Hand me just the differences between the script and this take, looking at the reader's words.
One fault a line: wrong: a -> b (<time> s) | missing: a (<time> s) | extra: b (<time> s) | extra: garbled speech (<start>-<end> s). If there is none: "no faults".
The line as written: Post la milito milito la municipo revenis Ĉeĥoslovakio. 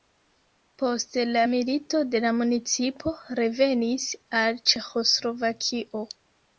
missing: milito (2.0 s)
extra: al (4.4 s)